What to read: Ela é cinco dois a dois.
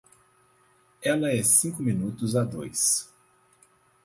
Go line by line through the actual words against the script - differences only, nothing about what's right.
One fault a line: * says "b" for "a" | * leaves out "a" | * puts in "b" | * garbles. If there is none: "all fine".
* says "minutos" for "dois"